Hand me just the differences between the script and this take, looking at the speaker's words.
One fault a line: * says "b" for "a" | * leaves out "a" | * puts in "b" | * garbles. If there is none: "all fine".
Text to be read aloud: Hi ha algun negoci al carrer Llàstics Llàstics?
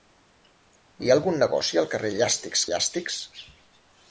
all fine